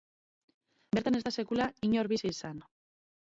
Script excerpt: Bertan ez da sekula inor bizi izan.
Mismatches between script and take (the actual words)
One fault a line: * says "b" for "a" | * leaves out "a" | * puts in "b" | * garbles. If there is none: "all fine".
all fine